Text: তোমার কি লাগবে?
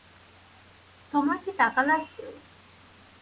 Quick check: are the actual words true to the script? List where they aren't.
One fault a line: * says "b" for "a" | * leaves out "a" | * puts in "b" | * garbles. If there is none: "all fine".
* puts in "টাকা"